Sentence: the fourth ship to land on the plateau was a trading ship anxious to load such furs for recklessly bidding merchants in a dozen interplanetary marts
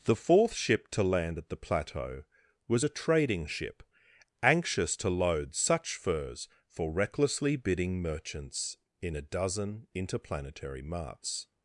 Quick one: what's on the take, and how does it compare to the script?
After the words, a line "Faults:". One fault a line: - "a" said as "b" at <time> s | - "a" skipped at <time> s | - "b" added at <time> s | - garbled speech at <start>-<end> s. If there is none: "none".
the fourth ship to land at the plateau was a trading ship anxious to load such furs for recklessly bidding merchants in a dozen interplanetary marts
Faults:
- "on" said as "at" at 1.4 s